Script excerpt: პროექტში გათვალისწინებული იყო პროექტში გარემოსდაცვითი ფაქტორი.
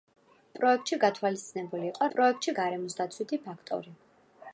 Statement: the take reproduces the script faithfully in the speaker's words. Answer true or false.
true